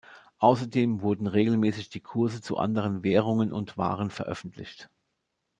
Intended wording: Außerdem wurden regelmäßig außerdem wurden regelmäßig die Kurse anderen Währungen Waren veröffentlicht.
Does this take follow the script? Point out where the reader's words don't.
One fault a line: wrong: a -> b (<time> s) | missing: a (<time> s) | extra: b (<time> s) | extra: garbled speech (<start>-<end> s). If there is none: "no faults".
missing: außerdem wurden regelmäßig (1.9 s)
extra: zu (2.4 s)
extra: und (3.5 s)